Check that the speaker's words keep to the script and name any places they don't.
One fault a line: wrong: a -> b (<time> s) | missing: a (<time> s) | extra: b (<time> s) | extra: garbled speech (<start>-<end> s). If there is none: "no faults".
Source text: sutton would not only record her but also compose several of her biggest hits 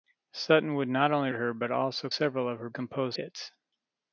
missing: record (1.3 s)
missing: compose (2.1 s)
wrong: biggest -> compose (2.7 s)